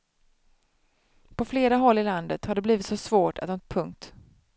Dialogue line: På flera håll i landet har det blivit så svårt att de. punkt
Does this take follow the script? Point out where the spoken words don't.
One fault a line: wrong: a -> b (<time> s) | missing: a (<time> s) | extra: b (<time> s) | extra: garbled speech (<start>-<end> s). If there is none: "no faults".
no faults